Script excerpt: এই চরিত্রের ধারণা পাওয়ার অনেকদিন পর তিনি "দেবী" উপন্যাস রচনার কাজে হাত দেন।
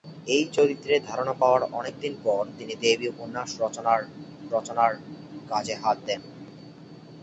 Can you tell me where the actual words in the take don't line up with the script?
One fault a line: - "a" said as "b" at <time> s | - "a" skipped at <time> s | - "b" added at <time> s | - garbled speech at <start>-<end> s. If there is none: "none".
- "রচনার" added at 4.5 s